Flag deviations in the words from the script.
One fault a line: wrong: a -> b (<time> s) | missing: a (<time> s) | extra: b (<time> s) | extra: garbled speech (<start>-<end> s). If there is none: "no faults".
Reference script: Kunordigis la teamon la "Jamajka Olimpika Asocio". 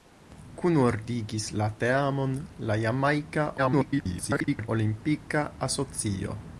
extra: garbled speech (3.6-4.7 s)